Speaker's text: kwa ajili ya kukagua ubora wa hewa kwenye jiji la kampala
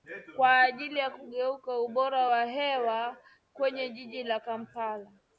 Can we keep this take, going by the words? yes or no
yes